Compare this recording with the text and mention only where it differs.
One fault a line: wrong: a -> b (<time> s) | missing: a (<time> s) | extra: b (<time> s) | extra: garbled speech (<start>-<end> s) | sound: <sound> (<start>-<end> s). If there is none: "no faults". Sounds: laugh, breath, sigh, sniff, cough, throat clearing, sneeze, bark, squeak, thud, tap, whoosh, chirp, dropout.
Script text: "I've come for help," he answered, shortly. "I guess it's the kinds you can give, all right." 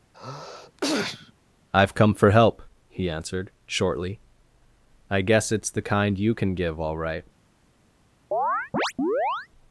sound: sneeze (0.1-1.3 s)
wrong: kinds -> kind (5.8 s)
sound: chirp (8.3-9.5 s)